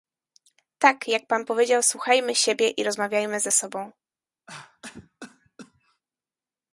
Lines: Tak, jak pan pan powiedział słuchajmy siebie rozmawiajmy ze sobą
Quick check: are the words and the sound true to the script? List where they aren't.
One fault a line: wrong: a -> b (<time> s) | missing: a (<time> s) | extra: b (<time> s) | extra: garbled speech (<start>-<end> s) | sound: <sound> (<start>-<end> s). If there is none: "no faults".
missing: pan (1.4 s)
extra: i (2.7 s)
sound: cough (4.5-6.0 s)